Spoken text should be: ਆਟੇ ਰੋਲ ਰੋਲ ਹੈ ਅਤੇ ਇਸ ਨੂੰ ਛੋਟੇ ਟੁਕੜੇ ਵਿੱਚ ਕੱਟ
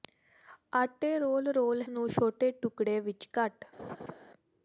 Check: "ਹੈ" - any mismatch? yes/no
yes